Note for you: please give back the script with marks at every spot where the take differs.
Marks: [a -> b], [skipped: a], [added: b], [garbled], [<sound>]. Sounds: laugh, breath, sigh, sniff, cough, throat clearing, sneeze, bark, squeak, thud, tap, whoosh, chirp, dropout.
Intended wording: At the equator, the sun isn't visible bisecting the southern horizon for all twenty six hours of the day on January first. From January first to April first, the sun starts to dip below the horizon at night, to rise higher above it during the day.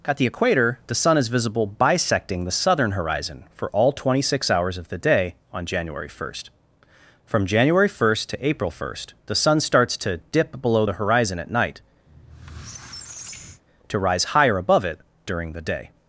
At the equator, the sun [isn't -> is] visible bisecting the southern horizon for all twenty six hours of the day on January first. From January first to April first, the sun starts to dip below the horizon at night, [squeak] to rise higher above it during the day.